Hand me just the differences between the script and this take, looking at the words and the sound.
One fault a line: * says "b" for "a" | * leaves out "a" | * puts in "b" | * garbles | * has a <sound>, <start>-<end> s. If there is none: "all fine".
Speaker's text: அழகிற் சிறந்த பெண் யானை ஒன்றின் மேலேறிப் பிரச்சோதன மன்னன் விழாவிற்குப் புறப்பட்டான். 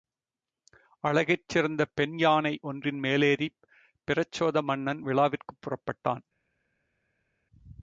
all fine